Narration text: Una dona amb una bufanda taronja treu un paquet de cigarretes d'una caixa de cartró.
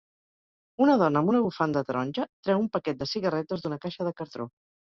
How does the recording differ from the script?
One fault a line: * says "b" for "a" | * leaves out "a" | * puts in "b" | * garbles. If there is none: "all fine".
all fine